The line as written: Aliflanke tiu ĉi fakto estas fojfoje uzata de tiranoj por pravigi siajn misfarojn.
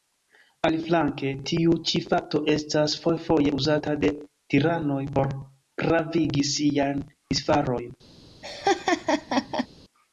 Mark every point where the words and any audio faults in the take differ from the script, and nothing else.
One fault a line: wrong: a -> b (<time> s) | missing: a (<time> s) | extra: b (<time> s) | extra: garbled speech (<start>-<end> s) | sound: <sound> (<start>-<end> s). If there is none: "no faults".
sound: laugh (8.4-9.7 s)